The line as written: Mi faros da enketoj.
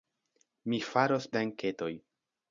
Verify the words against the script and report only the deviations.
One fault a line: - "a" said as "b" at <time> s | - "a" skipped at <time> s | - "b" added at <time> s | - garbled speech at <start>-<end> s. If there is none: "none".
none